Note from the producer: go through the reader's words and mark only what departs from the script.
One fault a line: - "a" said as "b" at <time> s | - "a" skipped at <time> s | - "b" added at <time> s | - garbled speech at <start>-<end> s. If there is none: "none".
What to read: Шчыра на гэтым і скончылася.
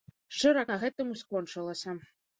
none